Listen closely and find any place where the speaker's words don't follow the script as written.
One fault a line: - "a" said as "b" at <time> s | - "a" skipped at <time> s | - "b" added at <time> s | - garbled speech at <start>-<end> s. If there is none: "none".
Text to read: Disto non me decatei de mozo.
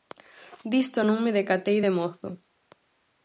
none